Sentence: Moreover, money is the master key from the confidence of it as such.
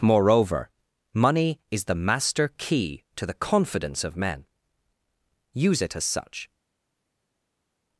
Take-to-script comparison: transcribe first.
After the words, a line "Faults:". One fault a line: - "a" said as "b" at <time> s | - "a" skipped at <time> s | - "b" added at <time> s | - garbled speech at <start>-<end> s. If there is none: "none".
Moreover, money is the master key to the confidence of men. Use it as such.
Faults:
- "from" said as "to" at 3.1 s
- "men Use" added at 4.2 s